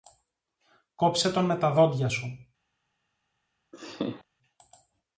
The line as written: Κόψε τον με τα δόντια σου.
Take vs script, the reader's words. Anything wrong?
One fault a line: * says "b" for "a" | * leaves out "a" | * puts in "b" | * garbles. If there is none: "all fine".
all fine